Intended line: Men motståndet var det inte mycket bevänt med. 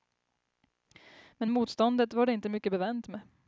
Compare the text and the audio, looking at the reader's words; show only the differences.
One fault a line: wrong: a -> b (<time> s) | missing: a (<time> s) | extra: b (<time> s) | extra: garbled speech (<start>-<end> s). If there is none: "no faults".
no faults